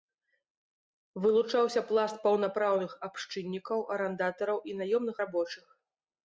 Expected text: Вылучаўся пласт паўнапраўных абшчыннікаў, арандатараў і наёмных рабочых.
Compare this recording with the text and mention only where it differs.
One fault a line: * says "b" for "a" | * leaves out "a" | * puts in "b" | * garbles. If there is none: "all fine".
all fine